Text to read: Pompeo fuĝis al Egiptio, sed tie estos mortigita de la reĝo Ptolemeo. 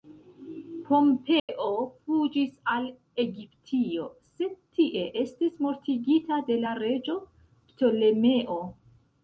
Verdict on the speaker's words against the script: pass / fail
fail